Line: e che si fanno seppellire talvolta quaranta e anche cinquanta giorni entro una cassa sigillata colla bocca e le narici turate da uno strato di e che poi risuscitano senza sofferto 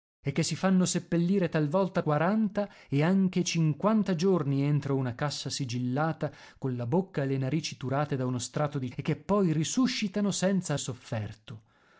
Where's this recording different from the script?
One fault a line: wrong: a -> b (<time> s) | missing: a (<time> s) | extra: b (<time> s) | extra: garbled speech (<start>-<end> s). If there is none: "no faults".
no faults